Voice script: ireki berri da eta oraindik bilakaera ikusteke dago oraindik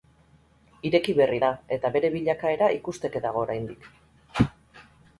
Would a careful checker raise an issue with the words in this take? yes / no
yes